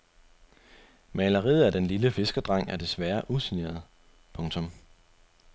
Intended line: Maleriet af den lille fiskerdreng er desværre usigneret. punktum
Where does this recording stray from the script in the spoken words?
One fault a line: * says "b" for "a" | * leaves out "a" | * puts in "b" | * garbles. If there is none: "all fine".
all fine